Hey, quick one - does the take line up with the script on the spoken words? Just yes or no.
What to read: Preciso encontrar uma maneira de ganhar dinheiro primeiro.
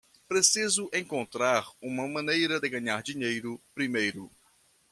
yes